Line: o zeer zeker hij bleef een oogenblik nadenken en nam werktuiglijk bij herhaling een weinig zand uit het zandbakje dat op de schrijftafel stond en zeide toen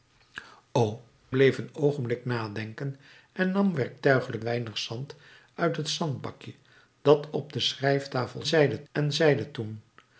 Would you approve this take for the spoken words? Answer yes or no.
no